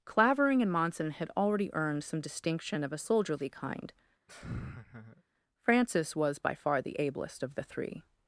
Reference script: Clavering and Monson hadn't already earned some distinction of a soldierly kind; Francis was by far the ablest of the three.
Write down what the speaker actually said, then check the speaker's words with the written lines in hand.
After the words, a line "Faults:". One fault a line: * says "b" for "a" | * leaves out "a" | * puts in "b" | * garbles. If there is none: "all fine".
Clavering and Monson had already earned some distinction of a soldierly kind; Francis was by far the ablest of the three.
Faults:
* says "had" for "hadn't"